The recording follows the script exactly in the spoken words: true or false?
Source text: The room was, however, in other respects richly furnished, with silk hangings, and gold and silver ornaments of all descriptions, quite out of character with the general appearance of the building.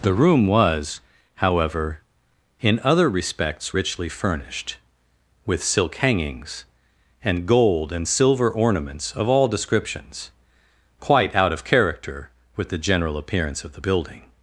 true